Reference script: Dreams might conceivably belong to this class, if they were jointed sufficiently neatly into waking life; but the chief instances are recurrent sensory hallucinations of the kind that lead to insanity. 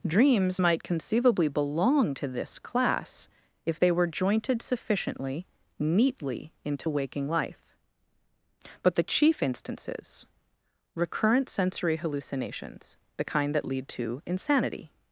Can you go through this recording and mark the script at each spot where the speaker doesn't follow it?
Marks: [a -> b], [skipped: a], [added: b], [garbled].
Dreams might conceivably belong to this class, if they were jointed sufficiently neatly into waking life; but the chief instances [skipped: are] recurrent sensory hallucinations [skipped: of] the kind that lead to insanity.